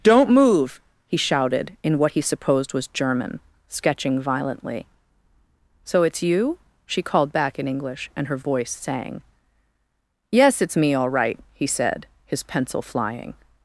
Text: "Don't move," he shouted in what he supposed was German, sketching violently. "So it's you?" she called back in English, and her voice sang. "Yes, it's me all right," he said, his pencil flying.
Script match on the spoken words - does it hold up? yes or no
yes